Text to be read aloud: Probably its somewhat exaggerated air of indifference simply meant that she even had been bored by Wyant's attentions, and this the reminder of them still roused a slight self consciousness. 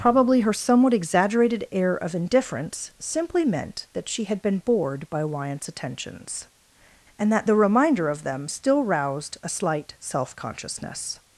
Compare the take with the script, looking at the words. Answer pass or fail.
fail